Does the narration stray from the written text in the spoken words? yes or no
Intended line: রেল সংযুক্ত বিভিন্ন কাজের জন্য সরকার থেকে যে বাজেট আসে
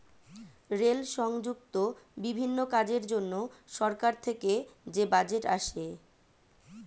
no